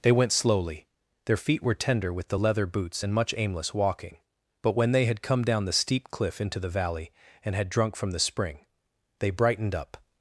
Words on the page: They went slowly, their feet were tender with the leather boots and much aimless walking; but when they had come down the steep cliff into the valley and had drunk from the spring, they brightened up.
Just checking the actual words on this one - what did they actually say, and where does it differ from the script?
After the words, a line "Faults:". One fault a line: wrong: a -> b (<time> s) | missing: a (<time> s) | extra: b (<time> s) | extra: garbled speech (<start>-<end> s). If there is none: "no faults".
They went slowly, their feet were tender with the leather boots and much aimless walking; but when they had come down the steep cliff into the valley and had drunk from the spring, they brightened up.
Faults:
no faults